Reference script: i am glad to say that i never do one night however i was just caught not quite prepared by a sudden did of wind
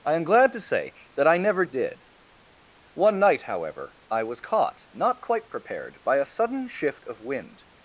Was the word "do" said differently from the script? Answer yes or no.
yes